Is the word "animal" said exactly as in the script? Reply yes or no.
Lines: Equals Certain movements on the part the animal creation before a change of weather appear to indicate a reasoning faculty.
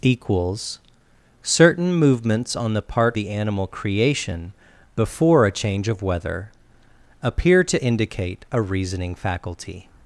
yes